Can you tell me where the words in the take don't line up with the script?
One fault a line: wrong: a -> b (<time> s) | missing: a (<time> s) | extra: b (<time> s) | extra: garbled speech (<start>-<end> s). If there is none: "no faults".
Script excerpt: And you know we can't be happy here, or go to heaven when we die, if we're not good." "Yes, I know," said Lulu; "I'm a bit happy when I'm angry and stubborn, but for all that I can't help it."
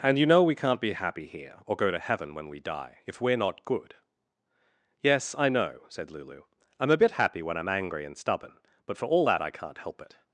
no faults